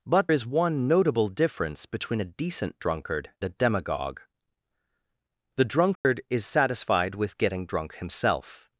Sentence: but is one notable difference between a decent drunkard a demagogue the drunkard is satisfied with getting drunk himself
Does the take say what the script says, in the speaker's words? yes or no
yes